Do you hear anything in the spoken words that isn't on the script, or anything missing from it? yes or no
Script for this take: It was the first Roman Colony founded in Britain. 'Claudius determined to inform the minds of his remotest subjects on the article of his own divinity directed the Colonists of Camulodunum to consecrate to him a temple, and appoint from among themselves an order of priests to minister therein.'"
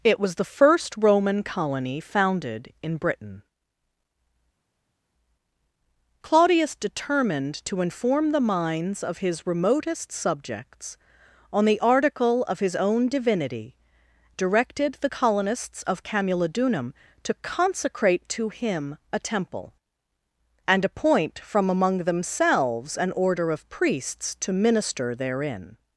no